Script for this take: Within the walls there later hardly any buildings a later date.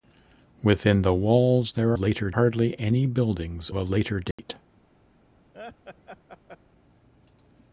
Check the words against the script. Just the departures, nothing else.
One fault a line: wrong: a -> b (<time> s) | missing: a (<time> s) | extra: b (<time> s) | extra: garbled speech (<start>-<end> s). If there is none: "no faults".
no faults